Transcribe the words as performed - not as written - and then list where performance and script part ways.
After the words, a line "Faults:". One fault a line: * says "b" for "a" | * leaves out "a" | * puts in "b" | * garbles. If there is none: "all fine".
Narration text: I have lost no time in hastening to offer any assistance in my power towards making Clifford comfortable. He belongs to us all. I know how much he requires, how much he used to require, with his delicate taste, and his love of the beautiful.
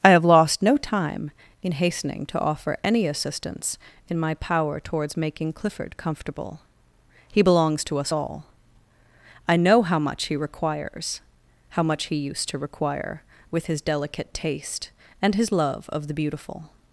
I have lost no time in hastening to offer any assistance in my power towards making Clifford comfortable. He belongs to us all. I know how much he requires, how much he used to require, with his delicate taste, and his love of the beautiful.
Faults:
all fine